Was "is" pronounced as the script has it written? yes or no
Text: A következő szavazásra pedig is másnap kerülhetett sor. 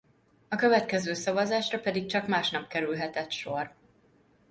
no